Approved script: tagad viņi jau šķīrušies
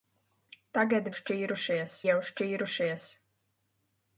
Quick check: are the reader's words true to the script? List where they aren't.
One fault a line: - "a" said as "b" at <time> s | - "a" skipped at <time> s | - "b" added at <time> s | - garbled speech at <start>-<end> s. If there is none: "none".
- "viņi" said as "šķīrušies" at 1.2 s